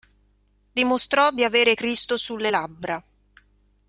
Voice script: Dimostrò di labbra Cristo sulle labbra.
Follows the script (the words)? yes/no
no